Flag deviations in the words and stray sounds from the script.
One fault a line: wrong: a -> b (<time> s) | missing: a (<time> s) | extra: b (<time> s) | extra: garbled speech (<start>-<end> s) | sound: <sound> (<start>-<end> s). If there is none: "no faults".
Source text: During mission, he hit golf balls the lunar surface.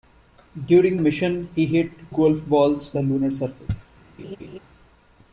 sound: laugh (4.2-4.6 s)